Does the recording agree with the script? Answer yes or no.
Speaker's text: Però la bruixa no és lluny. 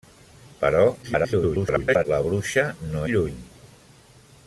no